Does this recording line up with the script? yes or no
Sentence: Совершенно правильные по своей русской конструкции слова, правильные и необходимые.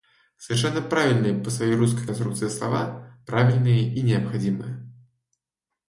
yes